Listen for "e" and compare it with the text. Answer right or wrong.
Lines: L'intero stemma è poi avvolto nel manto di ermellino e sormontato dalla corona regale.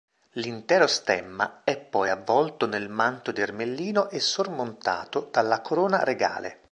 right